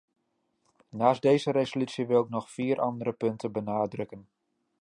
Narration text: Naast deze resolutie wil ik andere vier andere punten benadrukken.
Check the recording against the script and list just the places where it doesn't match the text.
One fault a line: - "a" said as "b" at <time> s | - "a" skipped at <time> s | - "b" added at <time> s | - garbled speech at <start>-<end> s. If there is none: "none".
- "andere" said as "nog" at 2.3 s